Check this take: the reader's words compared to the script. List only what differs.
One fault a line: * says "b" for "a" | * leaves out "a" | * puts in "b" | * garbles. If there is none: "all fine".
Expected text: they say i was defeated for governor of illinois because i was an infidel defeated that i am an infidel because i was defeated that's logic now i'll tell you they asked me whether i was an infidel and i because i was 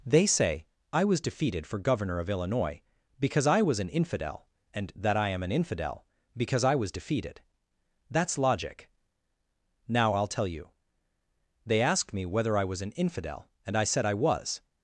* says "and" for "defeated"
* says "said" for "because"